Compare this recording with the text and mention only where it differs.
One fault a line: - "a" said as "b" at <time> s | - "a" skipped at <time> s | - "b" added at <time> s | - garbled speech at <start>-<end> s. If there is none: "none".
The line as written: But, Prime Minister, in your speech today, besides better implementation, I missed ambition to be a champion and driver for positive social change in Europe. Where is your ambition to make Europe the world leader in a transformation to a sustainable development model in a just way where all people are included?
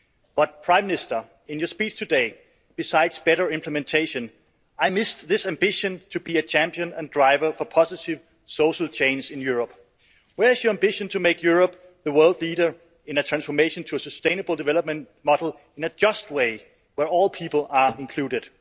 - "this" added at 5.3 s